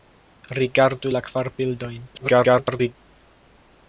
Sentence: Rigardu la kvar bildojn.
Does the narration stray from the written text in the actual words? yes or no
yes